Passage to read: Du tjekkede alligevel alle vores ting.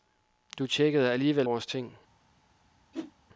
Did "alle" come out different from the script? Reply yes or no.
yes